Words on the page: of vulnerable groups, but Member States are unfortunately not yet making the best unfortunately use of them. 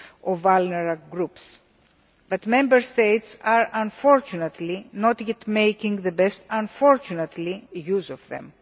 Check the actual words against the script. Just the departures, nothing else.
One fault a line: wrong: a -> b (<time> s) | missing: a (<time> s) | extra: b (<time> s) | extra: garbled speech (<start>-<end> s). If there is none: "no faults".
no faults